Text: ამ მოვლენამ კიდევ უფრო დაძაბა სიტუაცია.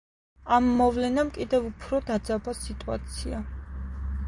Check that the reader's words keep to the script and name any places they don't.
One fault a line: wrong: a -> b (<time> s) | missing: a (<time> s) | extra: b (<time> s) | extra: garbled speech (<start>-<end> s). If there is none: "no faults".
no faults